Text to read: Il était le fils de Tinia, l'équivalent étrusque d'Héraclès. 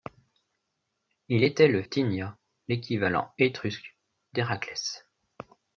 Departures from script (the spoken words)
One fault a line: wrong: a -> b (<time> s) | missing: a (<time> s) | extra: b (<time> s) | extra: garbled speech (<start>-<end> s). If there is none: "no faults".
missing: fils de (1.8 s)